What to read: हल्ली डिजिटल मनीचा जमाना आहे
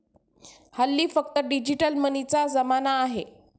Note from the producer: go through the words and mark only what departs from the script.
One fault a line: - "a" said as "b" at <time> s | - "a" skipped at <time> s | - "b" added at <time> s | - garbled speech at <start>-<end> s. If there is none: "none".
- "फक्त" added at 1.1 s